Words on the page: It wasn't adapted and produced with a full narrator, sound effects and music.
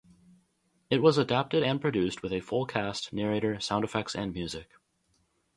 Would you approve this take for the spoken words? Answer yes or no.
no